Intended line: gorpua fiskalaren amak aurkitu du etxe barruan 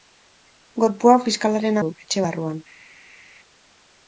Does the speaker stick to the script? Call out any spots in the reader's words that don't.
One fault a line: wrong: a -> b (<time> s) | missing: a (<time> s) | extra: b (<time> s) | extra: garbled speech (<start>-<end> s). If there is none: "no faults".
missing: amak aurkitu (1.8 s)